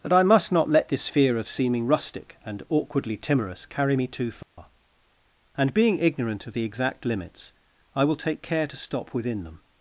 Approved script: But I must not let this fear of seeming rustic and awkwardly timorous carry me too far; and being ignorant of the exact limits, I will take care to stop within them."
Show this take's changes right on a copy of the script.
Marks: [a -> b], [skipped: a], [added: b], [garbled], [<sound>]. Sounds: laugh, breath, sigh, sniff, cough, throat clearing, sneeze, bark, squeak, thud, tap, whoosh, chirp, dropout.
[But -> That] I must not let this fear of seeming rustic and awkwardly timorous carry me too far; [dropout] and being ignorant of the exact limits, I will take care to stop within them."